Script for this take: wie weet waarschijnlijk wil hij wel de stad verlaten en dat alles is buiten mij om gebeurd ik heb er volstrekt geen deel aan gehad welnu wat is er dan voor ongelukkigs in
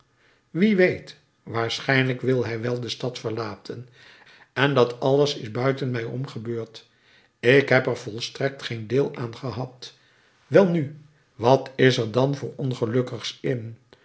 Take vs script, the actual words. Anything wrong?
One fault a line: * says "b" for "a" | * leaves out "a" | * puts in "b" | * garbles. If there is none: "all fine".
all fine